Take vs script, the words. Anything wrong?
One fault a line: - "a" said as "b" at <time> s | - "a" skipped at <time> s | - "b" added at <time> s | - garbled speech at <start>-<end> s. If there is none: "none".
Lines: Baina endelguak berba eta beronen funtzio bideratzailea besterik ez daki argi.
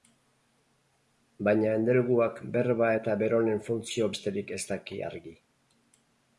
- "bideratzailea" skipped at 4.1 s